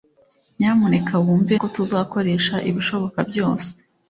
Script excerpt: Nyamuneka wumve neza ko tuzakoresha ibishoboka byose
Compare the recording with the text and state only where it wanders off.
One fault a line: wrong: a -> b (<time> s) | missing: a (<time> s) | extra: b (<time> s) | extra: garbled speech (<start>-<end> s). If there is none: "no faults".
missing: neza (1.6 s)